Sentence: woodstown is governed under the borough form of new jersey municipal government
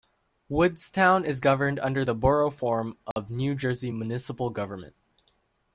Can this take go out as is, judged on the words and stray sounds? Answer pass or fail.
fail